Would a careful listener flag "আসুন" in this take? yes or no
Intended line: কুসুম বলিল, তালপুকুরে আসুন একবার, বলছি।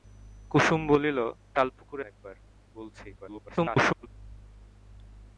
yes